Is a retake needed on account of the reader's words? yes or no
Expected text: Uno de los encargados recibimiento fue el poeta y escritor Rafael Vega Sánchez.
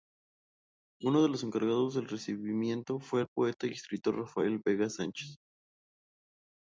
yes